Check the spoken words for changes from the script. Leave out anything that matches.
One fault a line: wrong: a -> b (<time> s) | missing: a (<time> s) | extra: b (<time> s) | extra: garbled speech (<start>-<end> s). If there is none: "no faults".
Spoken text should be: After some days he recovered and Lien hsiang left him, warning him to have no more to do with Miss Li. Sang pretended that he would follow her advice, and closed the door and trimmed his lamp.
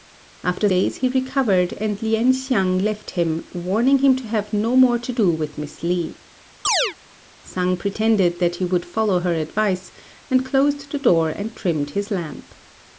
missing: some (0.7 s)